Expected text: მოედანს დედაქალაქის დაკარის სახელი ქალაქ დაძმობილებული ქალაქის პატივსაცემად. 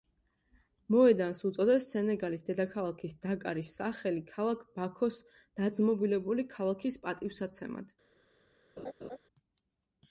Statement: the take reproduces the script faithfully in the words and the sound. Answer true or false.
false